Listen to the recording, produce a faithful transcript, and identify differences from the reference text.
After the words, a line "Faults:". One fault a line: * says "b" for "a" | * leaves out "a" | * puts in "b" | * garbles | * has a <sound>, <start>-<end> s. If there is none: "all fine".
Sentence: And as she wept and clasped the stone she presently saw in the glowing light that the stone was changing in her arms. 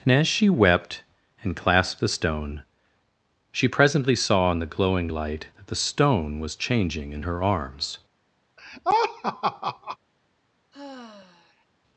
And as she wept and clasped the stone she presently saw in the glowing light that the stone was changing in her arms.
Faults:
* has a laugh, 8.6-10.0 s
* has a sigh, 10.7-11.7 s